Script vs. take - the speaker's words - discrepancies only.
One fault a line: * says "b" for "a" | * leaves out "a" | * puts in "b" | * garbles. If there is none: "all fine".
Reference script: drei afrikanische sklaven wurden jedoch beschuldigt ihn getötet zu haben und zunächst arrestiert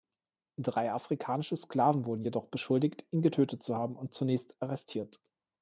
all fine